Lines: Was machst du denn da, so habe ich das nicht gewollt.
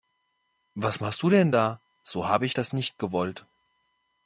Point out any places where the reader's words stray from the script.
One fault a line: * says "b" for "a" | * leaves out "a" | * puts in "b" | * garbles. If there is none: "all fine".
all fine